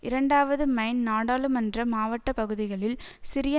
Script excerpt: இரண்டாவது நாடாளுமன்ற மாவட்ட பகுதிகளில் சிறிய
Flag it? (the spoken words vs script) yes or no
yes